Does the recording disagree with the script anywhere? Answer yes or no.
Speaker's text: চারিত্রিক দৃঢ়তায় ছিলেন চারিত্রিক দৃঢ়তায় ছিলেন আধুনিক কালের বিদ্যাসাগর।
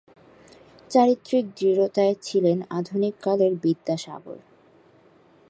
yes